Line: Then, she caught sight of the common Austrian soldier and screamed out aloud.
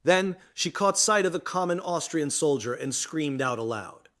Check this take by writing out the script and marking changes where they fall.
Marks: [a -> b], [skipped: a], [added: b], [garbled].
Then, she caught sight of the common Austrian soldier and screamed out aloud.